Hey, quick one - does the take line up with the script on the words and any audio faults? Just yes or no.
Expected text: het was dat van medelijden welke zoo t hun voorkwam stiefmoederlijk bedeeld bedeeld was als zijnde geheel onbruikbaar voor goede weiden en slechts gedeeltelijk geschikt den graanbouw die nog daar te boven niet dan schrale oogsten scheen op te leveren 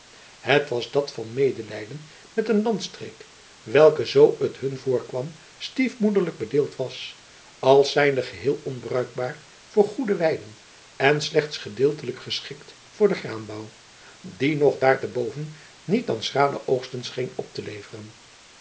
no